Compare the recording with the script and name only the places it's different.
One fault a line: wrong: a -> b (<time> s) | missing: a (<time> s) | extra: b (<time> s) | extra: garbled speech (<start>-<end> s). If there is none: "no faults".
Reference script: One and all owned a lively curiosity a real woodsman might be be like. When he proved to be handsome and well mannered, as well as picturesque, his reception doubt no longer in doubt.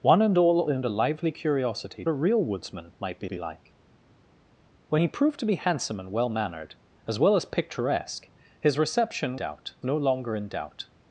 no faults